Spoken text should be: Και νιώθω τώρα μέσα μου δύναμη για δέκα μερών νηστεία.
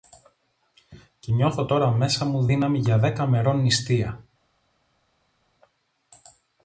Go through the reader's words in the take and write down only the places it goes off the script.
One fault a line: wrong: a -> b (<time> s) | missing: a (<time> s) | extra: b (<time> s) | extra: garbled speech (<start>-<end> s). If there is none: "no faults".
no faults